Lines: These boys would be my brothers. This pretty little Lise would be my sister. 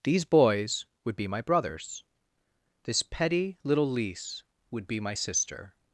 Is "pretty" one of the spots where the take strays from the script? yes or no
yes